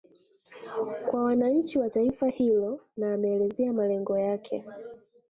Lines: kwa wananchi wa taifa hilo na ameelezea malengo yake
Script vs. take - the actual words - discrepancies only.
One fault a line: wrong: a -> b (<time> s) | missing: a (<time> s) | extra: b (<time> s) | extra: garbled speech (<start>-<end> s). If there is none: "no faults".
no faults